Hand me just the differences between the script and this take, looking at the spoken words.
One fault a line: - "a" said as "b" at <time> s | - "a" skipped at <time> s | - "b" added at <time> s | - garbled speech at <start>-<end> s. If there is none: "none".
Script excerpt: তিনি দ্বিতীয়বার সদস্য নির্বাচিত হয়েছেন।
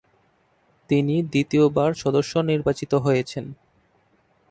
none